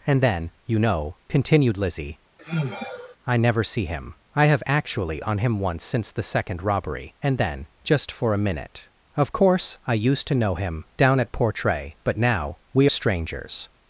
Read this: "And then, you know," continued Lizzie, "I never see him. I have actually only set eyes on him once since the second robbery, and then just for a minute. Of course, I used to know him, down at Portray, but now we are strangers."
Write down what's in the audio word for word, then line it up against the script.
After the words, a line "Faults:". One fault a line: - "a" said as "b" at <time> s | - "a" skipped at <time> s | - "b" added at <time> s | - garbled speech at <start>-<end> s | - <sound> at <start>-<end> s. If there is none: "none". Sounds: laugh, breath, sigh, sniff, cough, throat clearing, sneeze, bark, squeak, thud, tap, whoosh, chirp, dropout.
"And then, you know," continued Lizzie, "I never see him. I have actually on him once since the second robbery, and then just for a minute. Of course, I used to know him, down at Portray, but now we strangers."
Faults:
- sigh at 2.4-3.2 s
- "only set eyes" skipped at 5.2 s
- "are" skipped at 12.9 s